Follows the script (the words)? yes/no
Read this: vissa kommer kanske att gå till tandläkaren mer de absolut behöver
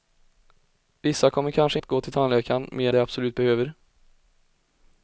yes